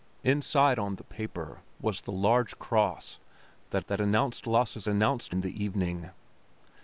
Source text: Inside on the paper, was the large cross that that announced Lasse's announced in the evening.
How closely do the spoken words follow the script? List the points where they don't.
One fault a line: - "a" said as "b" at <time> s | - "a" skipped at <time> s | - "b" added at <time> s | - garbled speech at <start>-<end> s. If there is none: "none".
none